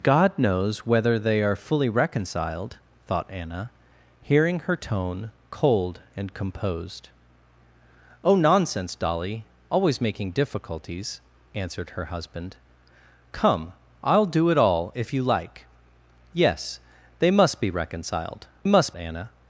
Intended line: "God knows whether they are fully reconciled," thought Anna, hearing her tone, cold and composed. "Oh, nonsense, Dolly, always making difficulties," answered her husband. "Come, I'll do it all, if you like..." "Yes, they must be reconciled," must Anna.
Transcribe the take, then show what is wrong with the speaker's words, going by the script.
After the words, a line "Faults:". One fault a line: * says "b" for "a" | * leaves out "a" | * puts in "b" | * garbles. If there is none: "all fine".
"God knows whether they are fully reconciled," thought Anna, hearing her tone, cold and composed. "Oh, nonsense, Dolly, always making difficulties," answered her husband. "Come, I'll do it all, if you like..." "Yes, they must be reconciled," must Anna.
Faults:
all fine